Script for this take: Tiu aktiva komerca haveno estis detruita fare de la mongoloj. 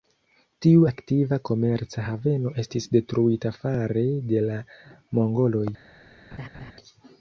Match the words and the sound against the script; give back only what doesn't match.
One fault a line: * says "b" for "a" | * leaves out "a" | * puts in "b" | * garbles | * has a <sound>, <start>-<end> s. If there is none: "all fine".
* has a laugh, 6.3-6.7 s